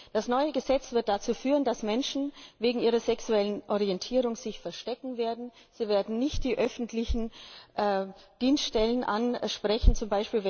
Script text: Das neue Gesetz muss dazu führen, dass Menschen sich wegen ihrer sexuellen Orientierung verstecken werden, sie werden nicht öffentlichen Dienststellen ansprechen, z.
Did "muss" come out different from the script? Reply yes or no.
yes